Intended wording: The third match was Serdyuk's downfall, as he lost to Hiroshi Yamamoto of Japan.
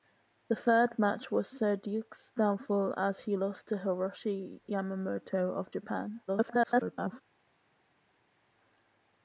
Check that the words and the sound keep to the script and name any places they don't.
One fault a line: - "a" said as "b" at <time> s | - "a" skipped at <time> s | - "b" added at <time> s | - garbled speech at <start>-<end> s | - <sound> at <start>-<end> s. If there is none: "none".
- garbled speech at 6.3-7.2 s